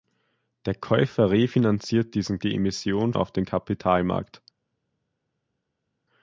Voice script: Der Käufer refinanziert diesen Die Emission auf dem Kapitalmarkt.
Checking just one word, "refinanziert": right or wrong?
right